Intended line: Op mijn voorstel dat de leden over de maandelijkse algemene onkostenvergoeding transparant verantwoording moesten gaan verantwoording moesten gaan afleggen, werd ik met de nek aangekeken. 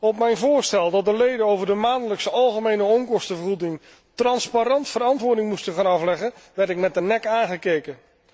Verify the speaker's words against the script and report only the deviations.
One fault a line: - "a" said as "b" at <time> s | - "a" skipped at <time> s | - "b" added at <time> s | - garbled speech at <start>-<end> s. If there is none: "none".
- "verantwoording moesten gaan" skipped at 5.8 s